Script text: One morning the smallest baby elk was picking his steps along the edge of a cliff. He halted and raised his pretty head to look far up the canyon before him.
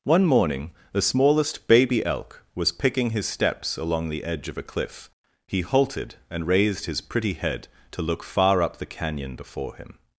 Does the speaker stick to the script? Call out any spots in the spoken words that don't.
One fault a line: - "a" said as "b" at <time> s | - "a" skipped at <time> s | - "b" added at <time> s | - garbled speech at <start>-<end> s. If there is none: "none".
none